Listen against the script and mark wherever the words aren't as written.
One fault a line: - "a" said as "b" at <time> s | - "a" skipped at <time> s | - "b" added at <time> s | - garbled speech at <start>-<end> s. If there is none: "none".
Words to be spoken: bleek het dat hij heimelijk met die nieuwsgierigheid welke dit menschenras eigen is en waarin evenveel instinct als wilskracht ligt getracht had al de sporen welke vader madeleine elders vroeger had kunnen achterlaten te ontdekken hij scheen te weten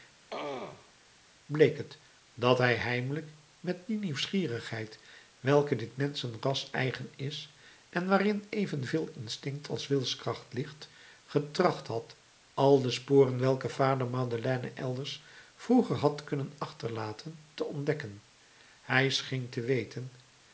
none